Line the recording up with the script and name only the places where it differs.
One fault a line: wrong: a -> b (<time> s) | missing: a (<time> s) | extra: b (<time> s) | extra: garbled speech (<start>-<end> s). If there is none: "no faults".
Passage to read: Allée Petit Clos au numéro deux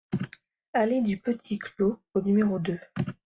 extra: du (1.0 s)